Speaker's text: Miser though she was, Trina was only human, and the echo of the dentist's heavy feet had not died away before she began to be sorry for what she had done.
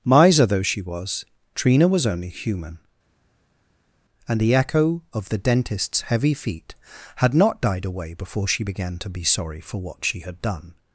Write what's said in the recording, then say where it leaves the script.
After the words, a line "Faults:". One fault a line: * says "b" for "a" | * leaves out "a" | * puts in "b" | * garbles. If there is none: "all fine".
Miser though she was, Trina was only human, and the echo of the dentist's heavy feet had not died away before she began to be sorry for what she had done.
Faults:
all fine